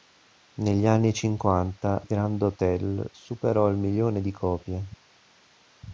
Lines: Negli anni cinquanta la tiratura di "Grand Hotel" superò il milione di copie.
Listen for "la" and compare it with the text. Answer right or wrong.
wrong